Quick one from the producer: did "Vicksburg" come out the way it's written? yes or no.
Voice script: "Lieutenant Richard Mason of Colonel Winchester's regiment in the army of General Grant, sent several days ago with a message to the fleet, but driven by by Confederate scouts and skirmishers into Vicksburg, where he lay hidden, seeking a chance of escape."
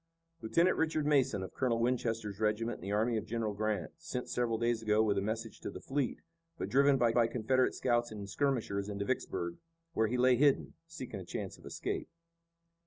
yes